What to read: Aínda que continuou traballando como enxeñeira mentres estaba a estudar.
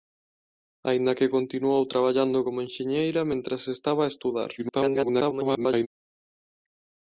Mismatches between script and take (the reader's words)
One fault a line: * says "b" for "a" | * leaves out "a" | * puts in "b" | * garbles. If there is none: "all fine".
* garbles